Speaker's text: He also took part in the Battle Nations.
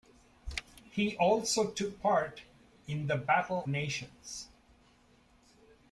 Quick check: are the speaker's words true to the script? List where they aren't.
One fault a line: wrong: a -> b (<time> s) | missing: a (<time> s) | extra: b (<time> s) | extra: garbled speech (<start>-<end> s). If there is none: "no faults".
no faults